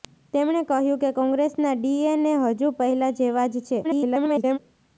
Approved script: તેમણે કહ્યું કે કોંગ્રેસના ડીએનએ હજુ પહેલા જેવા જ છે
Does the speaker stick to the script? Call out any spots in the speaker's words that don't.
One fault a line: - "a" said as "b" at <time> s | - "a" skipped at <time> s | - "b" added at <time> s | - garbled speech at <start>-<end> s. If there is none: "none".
- garbled speech at 3.8-4.6 s